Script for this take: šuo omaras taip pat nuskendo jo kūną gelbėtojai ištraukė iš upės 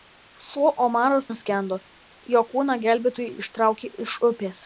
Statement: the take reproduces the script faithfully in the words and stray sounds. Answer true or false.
false